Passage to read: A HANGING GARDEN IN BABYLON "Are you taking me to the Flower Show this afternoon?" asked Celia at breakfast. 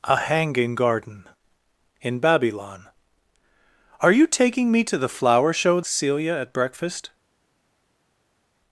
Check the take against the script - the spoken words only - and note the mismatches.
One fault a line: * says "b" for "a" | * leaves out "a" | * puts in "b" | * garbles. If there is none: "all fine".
* leaves out "this afternoon asked"